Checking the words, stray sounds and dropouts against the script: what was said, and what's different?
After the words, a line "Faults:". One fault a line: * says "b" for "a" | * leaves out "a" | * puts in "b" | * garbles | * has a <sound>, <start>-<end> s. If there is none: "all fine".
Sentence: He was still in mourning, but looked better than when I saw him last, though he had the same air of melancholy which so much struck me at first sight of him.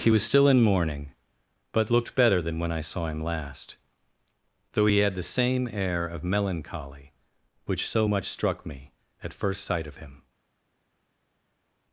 He was still in mourning, but looked better than when I saw him last, though he had the same air of melancholy which so much struck me at first sight of him.
Faults:
all fine